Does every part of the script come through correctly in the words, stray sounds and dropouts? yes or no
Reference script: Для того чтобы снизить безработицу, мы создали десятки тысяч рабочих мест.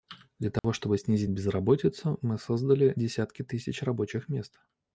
no